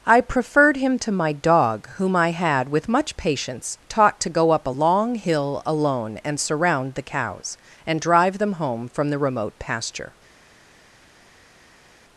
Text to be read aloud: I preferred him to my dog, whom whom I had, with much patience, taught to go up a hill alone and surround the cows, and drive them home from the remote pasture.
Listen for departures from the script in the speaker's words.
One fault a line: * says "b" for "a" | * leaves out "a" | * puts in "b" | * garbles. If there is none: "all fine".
* leaves out "whom"
* puts in "long"